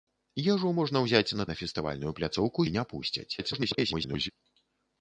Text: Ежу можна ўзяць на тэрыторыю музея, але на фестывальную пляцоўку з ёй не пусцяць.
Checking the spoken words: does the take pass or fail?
fail